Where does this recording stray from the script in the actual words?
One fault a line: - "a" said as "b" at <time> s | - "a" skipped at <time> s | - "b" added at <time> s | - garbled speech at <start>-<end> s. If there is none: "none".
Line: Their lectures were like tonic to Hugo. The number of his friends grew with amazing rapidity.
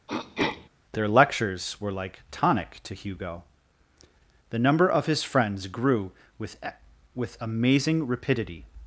- "with" added at 7.2 s